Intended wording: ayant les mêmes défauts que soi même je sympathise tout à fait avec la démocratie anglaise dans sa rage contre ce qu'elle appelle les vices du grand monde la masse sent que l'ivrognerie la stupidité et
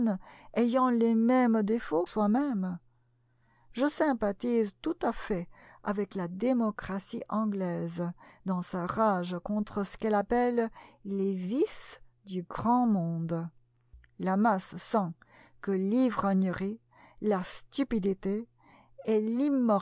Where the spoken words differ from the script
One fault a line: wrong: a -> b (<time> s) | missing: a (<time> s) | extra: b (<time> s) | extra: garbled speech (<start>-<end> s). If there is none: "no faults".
missing: que (2.1 s)